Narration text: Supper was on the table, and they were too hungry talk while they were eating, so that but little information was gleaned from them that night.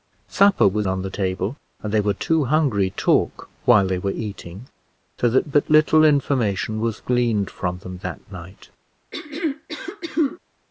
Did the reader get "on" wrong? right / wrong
right